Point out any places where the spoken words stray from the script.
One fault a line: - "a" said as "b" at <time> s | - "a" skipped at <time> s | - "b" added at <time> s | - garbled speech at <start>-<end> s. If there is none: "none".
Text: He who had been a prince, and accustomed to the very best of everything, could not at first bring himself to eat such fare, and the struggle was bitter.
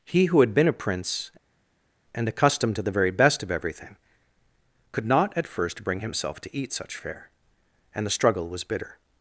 none